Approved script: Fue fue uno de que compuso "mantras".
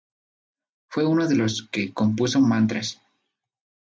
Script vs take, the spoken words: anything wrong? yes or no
yes